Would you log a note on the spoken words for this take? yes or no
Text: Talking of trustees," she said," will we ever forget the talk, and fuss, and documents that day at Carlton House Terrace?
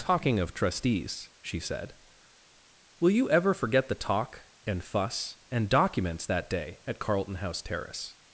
yes